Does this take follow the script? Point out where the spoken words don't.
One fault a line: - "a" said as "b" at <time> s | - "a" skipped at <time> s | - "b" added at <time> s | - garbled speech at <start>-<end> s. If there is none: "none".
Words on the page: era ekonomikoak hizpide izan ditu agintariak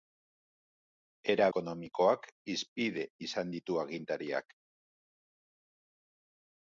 none